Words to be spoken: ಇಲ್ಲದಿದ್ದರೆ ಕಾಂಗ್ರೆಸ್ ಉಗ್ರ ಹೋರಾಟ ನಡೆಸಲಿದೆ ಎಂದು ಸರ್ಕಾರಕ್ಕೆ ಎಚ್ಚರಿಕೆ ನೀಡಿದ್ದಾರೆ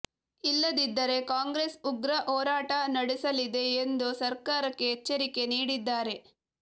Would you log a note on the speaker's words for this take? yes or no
no